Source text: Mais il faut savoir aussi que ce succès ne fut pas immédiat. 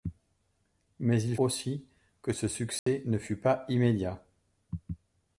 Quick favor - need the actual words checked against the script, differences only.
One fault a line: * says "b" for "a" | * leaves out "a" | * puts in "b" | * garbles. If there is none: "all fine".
* leaves out "faut savoir"